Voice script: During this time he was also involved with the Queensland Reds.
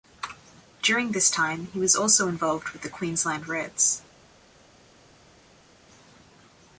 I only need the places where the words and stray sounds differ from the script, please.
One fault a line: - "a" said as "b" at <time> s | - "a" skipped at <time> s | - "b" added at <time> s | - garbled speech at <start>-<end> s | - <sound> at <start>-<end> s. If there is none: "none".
none